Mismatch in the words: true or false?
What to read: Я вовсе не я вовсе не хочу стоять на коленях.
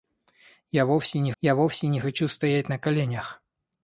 false